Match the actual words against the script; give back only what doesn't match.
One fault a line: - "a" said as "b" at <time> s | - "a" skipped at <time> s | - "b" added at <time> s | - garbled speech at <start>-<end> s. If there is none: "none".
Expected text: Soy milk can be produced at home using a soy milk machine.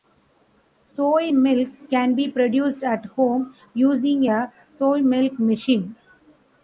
none